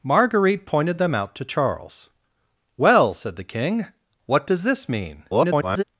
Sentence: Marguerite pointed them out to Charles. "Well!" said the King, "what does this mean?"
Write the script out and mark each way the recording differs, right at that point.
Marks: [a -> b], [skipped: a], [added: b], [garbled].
Marguerite pointed them out to Charles. "Well!" said the King, "what does this mean?" [garbled]